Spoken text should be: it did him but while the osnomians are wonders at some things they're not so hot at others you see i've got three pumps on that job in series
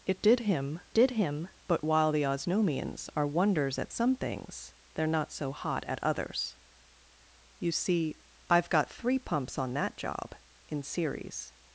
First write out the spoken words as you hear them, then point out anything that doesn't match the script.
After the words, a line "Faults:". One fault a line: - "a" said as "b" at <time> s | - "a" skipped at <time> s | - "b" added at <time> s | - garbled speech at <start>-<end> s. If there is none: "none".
it did him did him but while the osnomians are wonders at some things they're not so hot at others you see i've got three pumps on that job in series
Faults:
- "did him" added at 0.9 s